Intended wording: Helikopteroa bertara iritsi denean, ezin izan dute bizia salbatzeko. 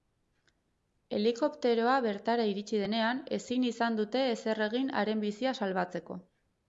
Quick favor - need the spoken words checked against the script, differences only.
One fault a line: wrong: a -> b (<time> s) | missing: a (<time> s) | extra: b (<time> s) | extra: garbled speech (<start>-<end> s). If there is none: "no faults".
extra: ezer egin haren (4.4 s)